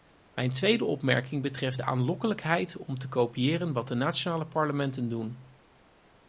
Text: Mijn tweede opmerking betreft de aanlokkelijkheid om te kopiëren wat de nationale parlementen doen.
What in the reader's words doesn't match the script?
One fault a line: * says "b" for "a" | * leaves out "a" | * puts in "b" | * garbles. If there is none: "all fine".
all fine